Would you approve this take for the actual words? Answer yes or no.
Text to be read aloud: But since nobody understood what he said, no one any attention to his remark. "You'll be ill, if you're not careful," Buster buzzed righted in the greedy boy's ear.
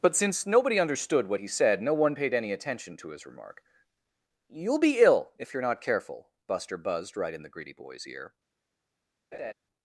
no